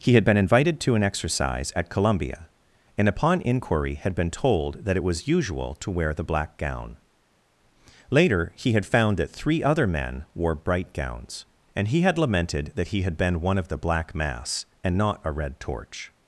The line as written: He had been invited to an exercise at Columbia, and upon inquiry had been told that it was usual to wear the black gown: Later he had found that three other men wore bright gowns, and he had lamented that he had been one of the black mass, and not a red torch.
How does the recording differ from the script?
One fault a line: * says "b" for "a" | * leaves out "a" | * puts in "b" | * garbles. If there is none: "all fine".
all fine